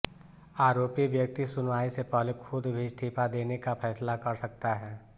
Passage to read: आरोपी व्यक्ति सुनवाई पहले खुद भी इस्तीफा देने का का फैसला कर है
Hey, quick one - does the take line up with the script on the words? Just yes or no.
no